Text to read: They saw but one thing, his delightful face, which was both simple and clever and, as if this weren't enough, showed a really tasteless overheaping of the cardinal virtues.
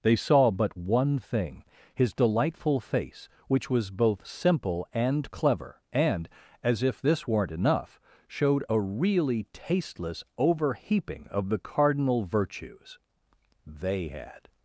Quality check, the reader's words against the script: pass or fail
fail